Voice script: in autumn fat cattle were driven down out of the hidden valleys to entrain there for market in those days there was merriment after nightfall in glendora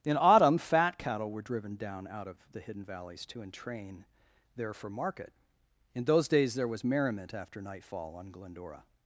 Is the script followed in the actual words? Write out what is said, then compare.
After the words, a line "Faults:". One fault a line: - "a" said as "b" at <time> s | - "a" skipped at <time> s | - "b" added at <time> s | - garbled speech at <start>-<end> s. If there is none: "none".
in autumn fat cattle were driven down out of the hidden valleys to entrain there for market in those days there was merriment after nightfall on glendora
Faults:
- "in" said as "on" at 8.2 s